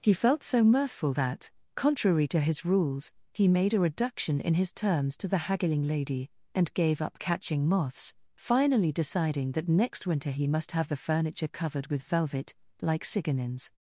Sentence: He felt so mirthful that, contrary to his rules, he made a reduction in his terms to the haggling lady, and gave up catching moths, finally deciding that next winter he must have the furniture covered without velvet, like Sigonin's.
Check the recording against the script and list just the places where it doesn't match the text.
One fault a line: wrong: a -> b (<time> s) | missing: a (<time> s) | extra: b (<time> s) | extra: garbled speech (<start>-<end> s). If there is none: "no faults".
wrong: without -> with (11.9 s)